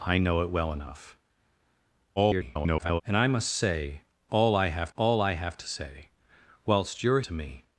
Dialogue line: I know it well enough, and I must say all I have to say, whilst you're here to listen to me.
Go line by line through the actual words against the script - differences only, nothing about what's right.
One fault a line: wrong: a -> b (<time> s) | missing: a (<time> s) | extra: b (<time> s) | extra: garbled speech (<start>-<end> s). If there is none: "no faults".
extra: garbled speech (2.2-3.0 s)
extra: all I have (4.9 s)
missing: here to listen (7.2 s)